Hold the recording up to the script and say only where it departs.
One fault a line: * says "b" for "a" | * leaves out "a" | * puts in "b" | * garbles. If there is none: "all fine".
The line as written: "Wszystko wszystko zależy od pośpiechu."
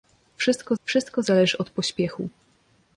all fine